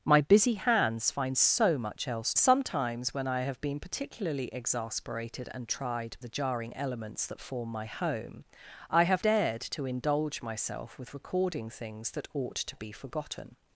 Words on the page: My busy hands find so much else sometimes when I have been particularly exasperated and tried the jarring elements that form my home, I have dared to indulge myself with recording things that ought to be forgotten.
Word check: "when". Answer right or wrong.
right